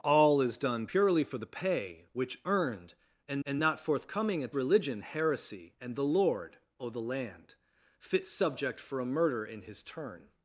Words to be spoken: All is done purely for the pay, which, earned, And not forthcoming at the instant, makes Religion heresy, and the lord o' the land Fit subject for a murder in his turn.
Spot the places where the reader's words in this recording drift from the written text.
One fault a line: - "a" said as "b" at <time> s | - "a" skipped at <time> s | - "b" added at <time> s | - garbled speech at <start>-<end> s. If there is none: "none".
- "And" added at 3.4 s
- "the instant makes" skipped at 4.5 s